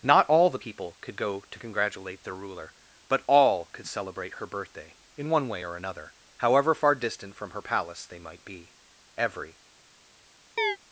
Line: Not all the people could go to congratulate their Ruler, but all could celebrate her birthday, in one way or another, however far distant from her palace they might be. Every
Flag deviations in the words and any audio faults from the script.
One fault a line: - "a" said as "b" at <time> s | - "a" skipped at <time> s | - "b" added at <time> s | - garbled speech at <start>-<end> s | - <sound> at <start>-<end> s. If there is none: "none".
- chirp at 10.6-10.8 s